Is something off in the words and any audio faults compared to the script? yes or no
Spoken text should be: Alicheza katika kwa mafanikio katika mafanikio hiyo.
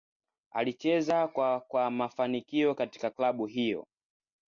yes